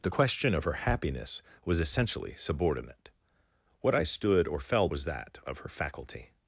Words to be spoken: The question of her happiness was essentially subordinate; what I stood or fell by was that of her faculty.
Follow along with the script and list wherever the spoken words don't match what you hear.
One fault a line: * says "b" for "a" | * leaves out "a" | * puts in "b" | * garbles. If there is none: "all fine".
* leaves out "by"